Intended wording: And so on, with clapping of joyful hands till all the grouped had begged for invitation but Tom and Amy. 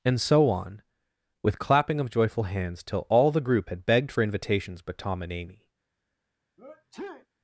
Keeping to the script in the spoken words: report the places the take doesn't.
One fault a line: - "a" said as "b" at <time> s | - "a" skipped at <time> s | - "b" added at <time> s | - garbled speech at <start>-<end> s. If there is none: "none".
- "grouped" said as "group" at 3.4 s
- "invitation" said as "invitations" at 4.2 s